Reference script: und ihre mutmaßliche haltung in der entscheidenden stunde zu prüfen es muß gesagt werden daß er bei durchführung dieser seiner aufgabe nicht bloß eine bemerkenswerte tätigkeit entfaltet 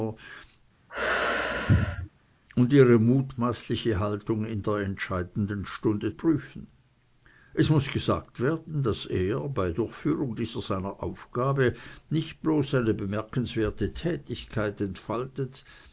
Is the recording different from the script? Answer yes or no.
yes